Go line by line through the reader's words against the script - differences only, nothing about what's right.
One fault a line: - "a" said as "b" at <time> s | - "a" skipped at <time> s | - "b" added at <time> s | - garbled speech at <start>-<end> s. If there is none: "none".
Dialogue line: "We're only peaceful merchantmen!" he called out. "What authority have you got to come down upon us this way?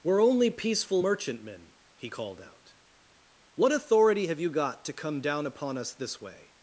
none